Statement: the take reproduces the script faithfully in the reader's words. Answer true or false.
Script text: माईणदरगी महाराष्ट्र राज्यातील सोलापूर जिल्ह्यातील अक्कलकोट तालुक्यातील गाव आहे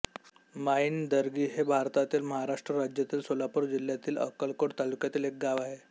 false